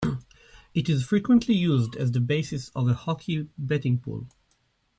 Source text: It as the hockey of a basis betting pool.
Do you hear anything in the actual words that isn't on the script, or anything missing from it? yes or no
yes